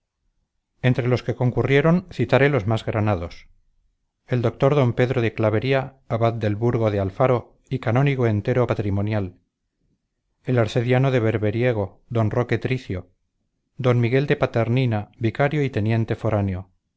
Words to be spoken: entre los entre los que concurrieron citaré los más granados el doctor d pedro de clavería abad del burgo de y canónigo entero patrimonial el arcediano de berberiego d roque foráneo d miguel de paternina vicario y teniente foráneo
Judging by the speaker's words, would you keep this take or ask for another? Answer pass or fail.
fail